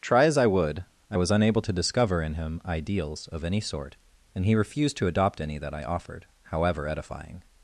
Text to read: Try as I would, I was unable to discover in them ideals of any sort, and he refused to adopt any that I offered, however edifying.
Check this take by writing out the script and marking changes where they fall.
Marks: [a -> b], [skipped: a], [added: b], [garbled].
Try as I would, I was unable to discover in [them -> him] ideals of any sort, and he refused to adopt any that I offered, however edifying.